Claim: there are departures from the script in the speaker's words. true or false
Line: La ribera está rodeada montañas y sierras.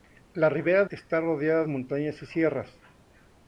false